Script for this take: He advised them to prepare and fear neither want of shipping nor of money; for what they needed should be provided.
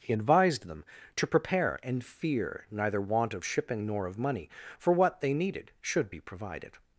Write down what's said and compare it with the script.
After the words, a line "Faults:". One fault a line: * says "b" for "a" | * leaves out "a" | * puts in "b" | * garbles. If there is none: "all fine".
He advised them to prepare and fear neither want of shipping nor of money; for what they needed should be provided.
Faults:
all fine